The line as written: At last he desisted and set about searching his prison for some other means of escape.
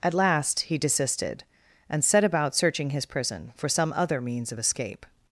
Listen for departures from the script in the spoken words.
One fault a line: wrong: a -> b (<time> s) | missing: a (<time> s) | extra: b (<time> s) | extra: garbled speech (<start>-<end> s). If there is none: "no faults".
no faults